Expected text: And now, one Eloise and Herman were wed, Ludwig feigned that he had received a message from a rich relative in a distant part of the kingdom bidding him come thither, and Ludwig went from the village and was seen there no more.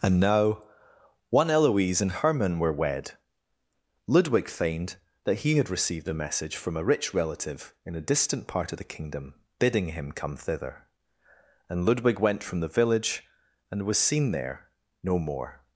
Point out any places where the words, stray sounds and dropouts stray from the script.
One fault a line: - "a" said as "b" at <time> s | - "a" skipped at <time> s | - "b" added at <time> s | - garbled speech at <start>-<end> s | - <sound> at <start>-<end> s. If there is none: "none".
none